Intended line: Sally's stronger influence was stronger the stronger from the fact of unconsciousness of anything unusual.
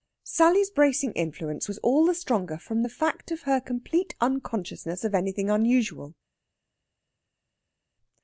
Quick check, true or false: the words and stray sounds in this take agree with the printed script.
false